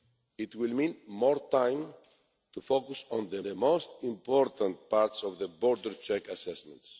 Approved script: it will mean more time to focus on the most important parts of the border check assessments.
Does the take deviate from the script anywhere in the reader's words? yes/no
yes